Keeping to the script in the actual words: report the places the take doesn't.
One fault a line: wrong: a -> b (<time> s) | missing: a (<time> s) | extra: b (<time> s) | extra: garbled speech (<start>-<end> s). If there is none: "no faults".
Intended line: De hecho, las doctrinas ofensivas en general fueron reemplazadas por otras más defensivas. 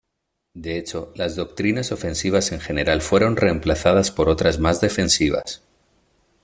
no faults